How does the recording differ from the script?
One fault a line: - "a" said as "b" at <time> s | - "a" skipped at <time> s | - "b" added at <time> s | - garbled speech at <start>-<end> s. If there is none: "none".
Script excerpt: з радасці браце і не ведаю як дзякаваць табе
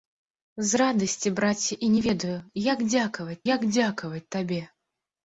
- "як дзякаваць" added at 3.5 s